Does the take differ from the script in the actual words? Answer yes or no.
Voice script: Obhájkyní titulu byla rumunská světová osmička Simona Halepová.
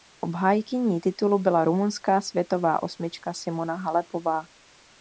no